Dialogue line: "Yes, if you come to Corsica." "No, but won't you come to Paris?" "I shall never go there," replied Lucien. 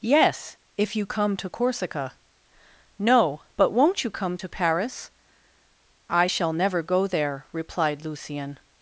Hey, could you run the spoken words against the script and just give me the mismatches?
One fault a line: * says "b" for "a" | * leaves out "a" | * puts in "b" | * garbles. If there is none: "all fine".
all fine